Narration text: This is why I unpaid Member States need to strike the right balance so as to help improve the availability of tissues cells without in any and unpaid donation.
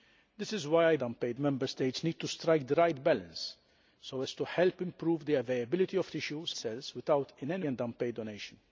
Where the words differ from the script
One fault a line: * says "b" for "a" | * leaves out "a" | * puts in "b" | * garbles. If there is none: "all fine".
all fine